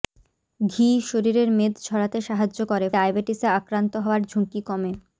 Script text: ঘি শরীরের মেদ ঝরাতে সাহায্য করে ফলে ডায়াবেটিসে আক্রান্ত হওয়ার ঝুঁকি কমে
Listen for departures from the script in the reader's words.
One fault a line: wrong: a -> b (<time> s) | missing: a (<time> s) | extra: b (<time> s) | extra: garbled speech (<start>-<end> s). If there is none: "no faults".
missing: ফলে (2.9 s)